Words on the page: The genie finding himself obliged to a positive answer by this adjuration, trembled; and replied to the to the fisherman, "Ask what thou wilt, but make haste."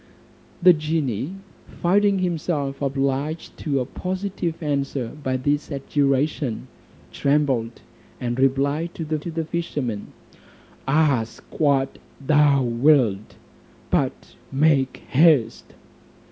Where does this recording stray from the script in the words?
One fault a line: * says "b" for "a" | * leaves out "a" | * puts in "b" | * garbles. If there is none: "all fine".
all fine